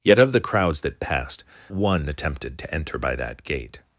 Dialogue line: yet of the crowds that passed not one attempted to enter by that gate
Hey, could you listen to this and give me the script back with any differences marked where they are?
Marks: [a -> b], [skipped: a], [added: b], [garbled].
yet of the crowds that passed [skipped: not] one attempted to enter by that gate